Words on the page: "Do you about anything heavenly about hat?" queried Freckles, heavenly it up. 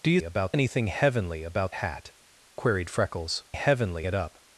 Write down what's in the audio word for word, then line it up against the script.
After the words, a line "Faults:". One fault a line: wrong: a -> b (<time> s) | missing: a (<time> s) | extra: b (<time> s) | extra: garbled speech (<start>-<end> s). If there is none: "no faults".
"Do you about anything heavenly about hat?" queried Freckles, heavenly it up.
Faults:
no faults